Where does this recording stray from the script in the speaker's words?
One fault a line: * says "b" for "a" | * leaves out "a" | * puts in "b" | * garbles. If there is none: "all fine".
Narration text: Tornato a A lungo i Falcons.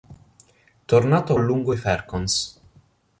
all fine